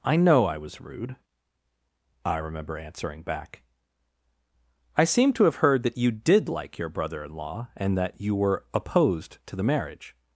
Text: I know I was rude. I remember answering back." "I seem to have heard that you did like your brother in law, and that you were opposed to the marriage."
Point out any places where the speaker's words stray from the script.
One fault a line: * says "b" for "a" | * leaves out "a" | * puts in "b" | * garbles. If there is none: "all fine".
all fine